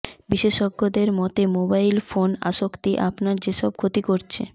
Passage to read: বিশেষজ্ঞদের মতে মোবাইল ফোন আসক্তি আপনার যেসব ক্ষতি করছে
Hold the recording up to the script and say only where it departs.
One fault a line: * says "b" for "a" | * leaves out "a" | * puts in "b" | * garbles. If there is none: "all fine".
all fine